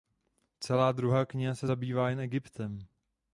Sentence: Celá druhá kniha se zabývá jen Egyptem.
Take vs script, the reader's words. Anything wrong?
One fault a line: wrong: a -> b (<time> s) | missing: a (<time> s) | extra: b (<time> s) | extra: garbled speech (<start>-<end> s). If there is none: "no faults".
no faults